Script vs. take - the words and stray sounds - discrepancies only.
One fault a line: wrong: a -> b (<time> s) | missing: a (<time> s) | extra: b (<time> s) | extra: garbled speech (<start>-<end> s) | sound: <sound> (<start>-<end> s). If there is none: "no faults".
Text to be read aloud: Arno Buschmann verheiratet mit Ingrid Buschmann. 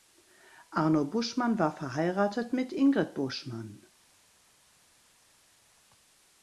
extra: war (1.6 s)